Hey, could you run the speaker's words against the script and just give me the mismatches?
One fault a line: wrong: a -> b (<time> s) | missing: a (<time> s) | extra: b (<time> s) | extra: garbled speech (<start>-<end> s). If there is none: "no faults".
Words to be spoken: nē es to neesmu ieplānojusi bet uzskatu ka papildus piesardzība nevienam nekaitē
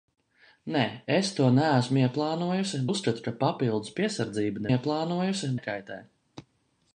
missing: bet (2.8 s)
wrong: nevienam -> ieplānojusi (4.7 s)